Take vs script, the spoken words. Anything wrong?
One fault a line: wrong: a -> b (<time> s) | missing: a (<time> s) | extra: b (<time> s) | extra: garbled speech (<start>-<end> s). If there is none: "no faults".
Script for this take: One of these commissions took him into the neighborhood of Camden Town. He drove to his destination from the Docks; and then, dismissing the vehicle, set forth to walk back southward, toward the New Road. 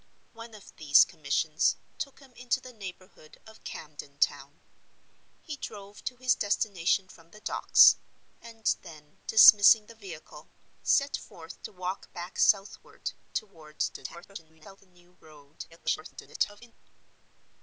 extra: garbled speech (13.9-14.8 s)
extra: garbled speech (15.7-16.7 s)